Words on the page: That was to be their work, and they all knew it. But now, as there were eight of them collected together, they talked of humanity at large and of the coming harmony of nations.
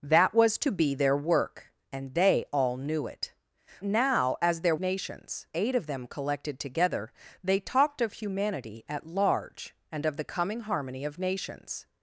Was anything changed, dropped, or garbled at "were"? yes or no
yes